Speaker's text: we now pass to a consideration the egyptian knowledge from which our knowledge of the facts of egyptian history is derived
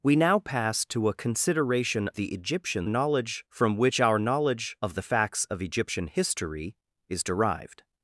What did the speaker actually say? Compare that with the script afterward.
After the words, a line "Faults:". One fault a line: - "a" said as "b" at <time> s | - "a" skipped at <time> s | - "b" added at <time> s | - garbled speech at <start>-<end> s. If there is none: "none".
we now pass to a consideration the egyptian knowledge from which our knowledge of the facts of egyptian history is derived
Faults:
none